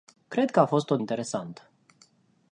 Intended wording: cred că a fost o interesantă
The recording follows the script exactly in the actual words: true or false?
true